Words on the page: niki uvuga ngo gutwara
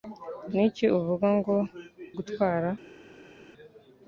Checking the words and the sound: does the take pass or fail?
pass